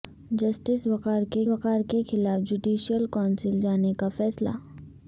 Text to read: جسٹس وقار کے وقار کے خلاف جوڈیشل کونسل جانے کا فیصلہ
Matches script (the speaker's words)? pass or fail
pass